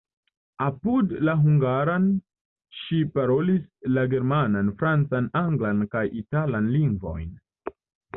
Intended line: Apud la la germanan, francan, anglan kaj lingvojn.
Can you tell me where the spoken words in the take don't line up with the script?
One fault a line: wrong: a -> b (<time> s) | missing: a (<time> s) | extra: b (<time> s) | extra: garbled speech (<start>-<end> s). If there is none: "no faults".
extra: hungaran ŝi parolis (1.4 s)
extra: italan (6.2 s)